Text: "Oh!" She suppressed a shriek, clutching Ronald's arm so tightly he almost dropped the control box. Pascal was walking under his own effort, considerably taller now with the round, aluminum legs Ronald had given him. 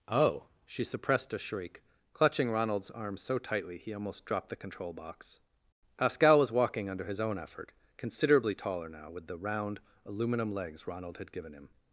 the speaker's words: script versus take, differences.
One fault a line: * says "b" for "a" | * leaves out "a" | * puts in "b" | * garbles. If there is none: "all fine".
all fine